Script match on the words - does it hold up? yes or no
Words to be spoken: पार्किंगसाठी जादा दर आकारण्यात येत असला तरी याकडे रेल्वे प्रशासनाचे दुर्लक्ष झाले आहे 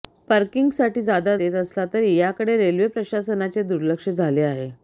no